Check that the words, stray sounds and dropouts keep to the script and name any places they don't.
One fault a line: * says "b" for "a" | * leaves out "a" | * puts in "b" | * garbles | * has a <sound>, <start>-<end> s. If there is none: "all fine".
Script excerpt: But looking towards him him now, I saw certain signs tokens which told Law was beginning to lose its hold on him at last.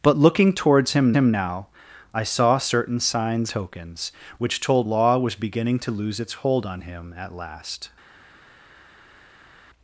all fine